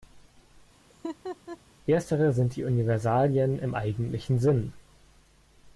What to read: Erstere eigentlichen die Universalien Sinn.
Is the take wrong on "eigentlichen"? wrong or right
wrong